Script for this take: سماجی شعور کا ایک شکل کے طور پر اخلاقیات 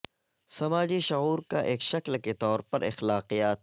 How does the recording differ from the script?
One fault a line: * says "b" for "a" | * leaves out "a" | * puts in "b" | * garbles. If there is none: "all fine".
all fine